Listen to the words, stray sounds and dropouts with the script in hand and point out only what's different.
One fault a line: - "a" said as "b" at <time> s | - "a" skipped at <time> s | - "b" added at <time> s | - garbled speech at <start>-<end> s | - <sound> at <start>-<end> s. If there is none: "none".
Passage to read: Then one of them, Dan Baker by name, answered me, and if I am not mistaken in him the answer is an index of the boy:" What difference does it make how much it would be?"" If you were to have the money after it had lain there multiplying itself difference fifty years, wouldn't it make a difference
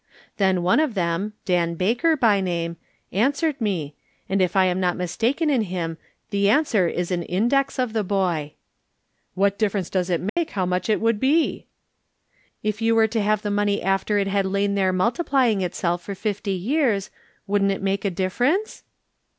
- dropout at 10.3-10.4 s
- "difference" said as "for" at 16.0 s